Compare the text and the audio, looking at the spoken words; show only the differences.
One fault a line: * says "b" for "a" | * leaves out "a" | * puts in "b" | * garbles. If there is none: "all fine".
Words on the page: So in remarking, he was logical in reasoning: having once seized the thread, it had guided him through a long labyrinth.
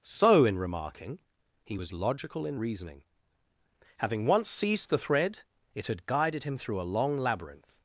all fine